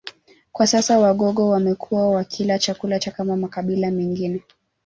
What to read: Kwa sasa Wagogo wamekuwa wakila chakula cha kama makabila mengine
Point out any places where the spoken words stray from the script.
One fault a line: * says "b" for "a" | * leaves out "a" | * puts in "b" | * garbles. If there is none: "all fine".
all fine